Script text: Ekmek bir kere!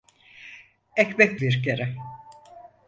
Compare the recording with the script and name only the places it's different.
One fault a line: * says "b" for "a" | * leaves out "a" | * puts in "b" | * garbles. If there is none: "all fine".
all fine